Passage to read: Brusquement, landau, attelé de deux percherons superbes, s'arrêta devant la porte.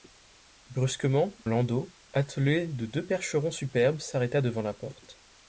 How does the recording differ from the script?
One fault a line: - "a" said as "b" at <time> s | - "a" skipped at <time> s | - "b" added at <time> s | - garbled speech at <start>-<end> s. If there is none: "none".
none